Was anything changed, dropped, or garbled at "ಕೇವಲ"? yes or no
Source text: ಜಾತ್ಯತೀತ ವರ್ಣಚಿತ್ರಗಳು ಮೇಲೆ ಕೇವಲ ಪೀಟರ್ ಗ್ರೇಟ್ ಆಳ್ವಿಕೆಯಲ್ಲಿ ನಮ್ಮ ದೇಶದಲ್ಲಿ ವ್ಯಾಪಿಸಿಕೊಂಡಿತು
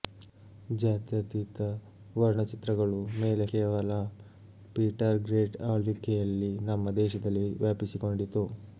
no